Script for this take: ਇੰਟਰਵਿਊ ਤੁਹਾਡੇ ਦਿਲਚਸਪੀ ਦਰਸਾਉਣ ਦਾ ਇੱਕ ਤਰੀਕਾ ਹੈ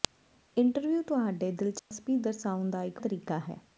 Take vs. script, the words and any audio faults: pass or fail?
fail